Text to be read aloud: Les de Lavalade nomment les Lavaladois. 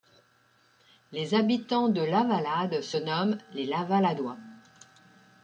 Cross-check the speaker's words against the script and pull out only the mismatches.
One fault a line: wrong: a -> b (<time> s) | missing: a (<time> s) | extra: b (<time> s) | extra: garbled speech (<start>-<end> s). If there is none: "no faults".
extra: habitants (1.4 s)
extra: se (2.8 s)